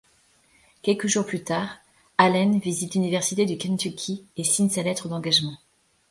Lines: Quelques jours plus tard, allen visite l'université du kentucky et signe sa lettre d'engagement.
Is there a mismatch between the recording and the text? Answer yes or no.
no